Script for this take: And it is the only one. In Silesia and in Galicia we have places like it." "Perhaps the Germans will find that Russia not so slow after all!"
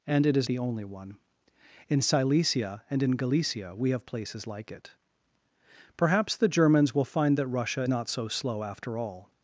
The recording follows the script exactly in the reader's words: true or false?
true